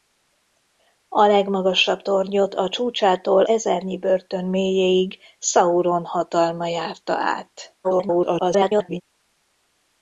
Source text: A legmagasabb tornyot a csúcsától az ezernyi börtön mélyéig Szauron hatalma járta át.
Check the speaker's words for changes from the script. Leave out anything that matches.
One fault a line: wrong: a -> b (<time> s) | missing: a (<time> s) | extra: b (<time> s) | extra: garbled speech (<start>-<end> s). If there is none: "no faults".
missing: az (3.4 s)
extra: garbled speech (7.8-9.0 s)